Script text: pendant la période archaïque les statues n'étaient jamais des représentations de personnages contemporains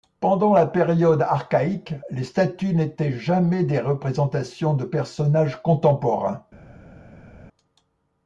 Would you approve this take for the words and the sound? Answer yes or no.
yes